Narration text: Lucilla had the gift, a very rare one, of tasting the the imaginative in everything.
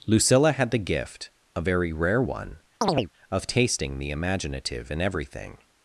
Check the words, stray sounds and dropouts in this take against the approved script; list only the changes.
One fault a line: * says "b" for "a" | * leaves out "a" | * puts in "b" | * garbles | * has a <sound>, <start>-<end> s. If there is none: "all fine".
* has a chirp, 2.8-3.1 s
* leaves out "the"